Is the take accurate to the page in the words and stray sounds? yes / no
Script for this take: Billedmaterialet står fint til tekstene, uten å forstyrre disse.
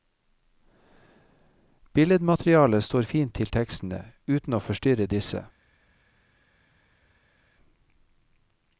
yes